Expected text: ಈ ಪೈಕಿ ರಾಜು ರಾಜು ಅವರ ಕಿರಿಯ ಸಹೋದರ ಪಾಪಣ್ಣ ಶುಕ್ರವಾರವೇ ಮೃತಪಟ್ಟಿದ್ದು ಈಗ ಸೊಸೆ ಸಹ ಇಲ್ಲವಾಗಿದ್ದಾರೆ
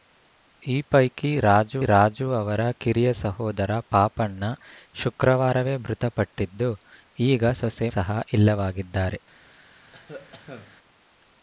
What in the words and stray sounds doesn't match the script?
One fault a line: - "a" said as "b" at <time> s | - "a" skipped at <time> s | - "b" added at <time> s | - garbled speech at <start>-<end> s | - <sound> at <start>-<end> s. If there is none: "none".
- cough at 9.9-10.8 s